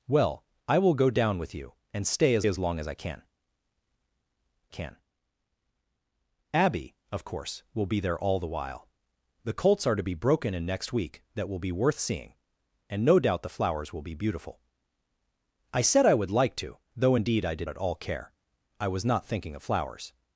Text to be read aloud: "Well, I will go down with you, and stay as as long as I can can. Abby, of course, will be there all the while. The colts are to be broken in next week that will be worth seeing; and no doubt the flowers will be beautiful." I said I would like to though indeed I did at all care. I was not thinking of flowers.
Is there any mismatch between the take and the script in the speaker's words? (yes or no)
no